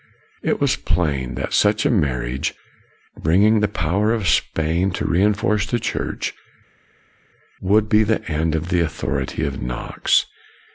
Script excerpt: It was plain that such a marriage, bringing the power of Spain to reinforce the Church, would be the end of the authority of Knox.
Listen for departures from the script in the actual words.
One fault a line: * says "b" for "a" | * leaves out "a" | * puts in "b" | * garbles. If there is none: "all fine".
all fine